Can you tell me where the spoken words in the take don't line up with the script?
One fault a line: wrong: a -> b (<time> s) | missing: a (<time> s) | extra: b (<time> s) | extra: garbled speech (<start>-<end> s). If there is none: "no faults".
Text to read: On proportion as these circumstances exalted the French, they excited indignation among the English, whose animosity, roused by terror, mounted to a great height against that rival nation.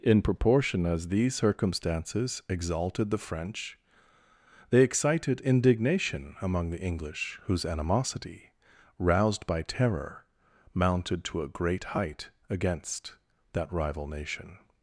wrong: On -> In (0.0 s)